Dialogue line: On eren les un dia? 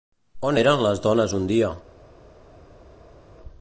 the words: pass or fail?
fail